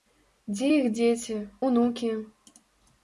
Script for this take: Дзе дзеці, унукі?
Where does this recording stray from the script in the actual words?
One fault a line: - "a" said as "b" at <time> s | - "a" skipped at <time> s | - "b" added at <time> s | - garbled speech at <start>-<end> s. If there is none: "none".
- "іх" added at 0.7 s